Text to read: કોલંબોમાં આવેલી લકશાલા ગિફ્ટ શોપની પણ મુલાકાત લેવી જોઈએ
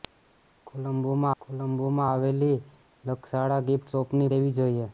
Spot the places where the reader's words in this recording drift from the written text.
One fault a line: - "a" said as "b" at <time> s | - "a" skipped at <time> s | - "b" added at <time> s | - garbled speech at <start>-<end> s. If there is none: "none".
- "કોલંબોમાં" added at 1.4 s
- "પણ મુલાકાત" skipped at 4.3 s